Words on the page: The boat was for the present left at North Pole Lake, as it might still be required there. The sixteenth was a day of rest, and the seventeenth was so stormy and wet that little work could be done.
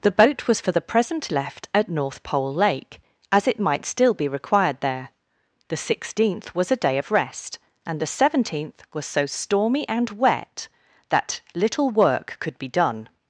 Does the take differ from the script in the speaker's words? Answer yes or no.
no